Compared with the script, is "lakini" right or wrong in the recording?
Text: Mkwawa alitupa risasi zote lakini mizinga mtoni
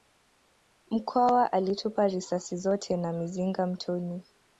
wrong